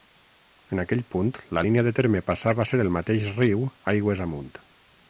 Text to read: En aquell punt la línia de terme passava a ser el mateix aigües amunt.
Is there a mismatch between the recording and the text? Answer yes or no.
yes